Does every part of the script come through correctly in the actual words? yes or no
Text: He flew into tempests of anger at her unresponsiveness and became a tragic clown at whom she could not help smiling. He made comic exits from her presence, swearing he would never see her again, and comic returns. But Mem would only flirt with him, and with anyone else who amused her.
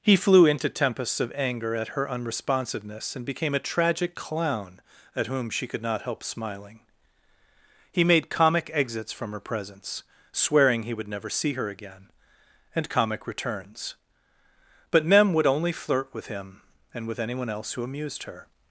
yes